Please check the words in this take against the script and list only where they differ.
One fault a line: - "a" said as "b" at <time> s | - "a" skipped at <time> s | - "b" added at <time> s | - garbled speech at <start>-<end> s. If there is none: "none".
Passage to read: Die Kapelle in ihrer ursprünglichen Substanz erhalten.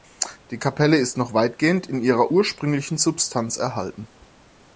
- "ist noch weitgehend" added at 1.0 s